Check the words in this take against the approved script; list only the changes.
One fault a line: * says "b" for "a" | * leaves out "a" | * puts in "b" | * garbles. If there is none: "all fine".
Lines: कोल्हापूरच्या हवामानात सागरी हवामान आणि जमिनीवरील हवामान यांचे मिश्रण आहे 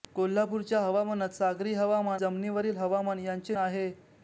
* leaves out "आणि"
* leaves out "मिश्रण"